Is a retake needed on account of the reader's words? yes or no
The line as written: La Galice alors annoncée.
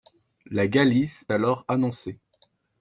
no